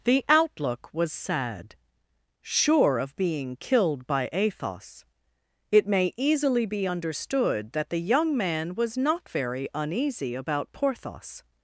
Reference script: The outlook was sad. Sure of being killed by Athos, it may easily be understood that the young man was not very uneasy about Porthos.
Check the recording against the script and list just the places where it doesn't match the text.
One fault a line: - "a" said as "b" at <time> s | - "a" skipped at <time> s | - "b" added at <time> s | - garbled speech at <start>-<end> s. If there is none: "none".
none